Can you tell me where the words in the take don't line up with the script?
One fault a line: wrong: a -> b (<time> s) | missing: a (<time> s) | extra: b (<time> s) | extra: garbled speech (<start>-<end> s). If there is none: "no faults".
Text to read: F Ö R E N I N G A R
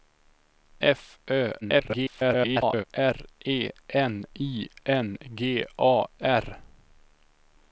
extra: garbled speech (1.6-2.8 s)